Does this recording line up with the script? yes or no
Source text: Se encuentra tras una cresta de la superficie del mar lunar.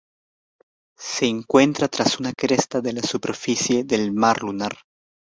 yes